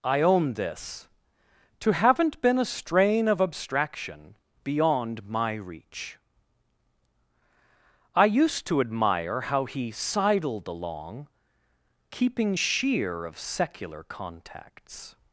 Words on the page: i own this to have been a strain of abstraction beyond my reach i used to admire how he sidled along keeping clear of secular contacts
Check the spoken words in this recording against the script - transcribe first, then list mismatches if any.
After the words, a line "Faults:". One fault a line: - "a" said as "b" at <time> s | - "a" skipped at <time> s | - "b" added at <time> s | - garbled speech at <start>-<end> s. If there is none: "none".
i own this to haven't been a strain of abstraction beyond my reach i used to admire how he sidled along keeping sheer of secular contacts
Faults:
- "have" said as "haven't" at 1.9 s
- "clear" said as "sheer" at 12.5 s